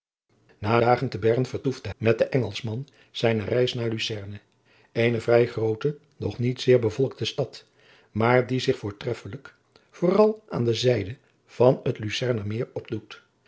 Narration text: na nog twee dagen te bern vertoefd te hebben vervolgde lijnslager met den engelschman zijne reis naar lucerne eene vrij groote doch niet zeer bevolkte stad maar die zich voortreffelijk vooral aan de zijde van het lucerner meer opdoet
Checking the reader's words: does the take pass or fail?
fail